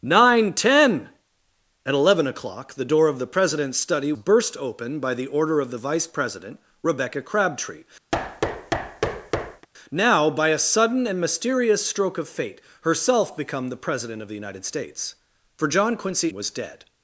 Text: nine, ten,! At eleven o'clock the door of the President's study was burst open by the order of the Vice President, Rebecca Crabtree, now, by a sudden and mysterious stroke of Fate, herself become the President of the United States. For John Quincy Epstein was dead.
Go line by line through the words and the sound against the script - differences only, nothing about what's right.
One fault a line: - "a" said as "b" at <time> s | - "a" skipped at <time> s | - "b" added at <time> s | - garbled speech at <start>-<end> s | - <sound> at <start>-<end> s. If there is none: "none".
- "was" skipped at 4.1 s
- thud at 8.1-9.7 s
- "Epstein" skipped at 16.3 s